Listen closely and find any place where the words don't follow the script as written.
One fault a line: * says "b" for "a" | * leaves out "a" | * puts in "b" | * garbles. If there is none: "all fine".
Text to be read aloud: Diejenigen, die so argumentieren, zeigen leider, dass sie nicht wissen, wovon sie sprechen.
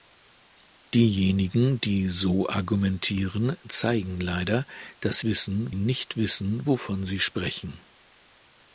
* says "wissen" for "sie"